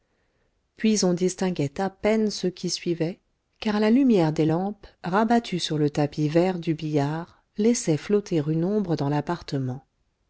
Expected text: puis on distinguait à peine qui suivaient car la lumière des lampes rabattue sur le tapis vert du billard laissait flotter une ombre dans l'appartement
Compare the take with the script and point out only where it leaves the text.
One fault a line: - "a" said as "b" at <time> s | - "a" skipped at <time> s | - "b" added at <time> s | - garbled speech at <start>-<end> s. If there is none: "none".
- "ceux" added at 2.3 s